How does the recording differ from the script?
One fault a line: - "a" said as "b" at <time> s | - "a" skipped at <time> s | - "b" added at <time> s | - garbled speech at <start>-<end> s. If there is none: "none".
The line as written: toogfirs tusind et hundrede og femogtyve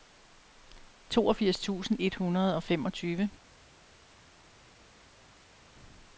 none